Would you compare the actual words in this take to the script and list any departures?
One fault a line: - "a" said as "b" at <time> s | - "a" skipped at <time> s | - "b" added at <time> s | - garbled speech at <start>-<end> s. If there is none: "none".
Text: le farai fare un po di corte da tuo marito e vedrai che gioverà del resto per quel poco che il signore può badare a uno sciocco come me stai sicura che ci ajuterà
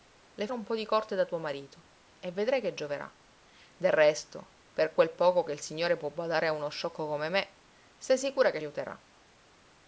- "farai fare" skipped at 0.5 s
- "ci" skipped at 8.6 s